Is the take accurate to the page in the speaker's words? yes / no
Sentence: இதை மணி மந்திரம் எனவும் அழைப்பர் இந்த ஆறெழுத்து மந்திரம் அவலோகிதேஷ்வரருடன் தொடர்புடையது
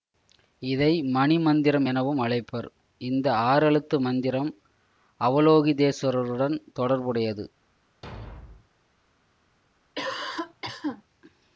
yes